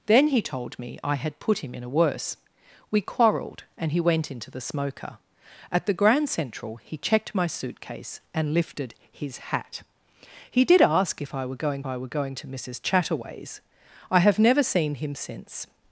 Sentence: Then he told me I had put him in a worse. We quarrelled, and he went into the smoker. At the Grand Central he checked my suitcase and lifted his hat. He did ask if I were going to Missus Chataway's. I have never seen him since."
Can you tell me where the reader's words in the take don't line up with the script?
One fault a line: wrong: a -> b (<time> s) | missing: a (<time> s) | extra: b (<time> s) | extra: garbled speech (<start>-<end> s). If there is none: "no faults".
extra: I were going (11.8 s)